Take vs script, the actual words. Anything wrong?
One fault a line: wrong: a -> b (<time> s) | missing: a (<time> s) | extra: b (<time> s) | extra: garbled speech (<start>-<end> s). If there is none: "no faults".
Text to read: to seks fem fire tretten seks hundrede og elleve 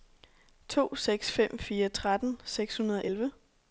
no faults